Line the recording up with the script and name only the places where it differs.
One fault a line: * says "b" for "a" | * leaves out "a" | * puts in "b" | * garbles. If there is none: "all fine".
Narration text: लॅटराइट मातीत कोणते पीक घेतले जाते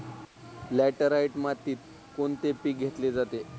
all fine